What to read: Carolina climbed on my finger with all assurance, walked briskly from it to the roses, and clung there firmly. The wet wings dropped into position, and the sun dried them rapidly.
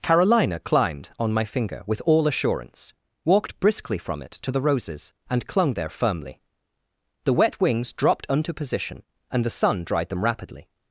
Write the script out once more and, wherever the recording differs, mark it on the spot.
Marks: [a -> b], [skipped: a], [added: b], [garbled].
Carolina climbed on my finger with all assurance, walked briskly from it to the roses, and clung there firmly. The wet wings dropped [into -> unto] position, and the sun dried them rapidly.